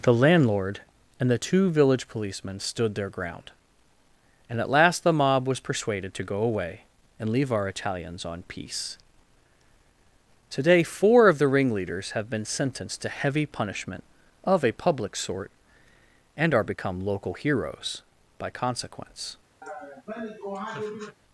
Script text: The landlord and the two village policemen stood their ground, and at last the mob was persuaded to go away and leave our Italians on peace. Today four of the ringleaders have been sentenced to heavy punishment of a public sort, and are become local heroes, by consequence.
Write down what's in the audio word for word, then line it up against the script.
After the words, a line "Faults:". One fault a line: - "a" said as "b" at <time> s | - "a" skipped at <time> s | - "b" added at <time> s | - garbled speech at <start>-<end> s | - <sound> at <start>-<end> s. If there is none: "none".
The landlord and the two village policemen stood their ground, and at last the mob was persuaded to go away and leave our Italians on peace. Today four of the ringleaders have been sentenced to heavy punishment of a public sort, and are become local heroes, by consequence.
Faults:
- laugh at 19.6-21.2 s